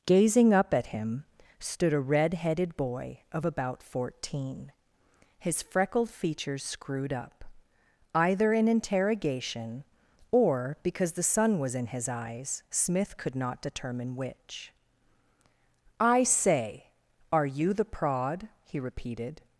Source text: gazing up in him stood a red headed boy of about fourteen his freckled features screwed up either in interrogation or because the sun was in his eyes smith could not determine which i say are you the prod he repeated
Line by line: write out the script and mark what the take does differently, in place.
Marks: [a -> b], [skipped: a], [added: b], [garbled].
gazing up [in -> at] him stood a red headed boy of about fourteen his freckled features screwed up either in interrogation or because the sun was in his eyes smith could not determine which i say are you the prod he repeated